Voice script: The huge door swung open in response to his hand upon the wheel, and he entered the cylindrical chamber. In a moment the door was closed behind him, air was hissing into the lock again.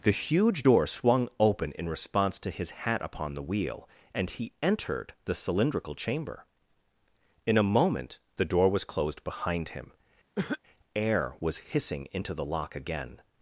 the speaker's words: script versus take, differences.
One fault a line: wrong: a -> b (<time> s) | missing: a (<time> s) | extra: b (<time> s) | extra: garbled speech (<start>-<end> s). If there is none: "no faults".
wrong: hand -> hat (2.7 s)